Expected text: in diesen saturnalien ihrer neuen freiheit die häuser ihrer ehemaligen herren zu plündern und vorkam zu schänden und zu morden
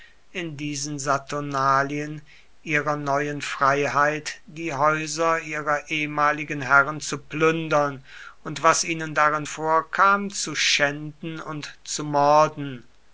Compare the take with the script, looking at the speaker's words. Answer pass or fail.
fail